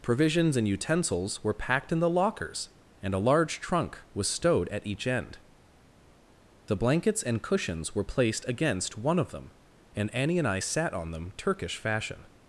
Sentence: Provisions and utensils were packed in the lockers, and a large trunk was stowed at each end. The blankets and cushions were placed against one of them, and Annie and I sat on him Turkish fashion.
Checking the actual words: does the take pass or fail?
fail